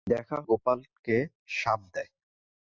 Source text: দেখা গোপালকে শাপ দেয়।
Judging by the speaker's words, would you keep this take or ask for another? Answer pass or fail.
pass